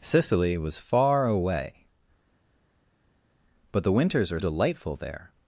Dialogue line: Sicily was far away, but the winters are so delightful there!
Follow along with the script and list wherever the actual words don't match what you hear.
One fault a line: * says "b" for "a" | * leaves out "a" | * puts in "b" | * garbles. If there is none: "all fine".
* leaves out "so"